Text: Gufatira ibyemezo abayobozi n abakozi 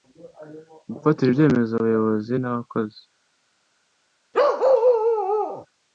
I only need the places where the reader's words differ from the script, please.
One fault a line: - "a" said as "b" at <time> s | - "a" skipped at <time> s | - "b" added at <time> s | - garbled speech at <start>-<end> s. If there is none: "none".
none